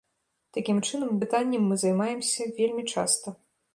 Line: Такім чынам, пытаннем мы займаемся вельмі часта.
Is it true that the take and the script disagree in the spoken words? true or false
false